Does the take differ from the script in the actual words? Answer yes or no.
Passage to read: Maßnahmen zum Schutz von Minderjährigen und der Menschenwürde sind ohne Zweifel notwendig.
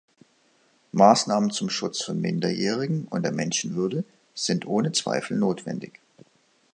no